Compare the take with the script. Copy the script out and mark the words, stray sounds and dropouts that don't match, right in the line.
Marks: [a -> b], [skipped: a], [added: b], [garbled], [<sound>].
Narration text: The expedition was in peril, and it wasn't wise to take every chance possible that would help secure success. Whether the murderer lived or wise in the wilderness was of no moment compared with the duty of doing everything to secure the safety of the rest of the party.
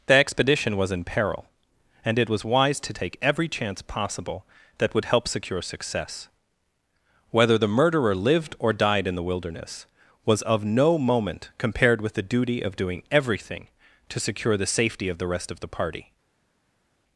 The expedition was in peril, and it [wasn't -> was] wise to take every chance possible that would help secure success. Whether the murderer lived or [wise -> died] in the wilderness was of no moment compared with the duty of doing everything to secure the safety of the rest of the party.